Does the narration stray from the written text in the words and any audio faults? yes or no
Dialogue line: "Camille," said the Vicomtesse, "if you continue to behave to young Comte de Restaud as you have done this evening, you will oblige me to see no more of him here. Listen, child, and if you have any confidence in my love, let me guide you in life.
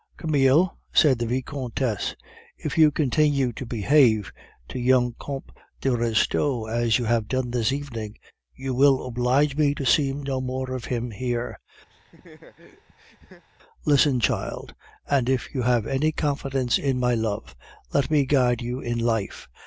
yes